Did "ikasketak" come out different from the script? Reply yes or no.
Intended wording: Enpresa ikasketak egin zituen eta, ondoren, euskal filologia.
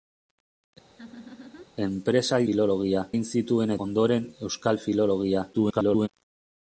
yes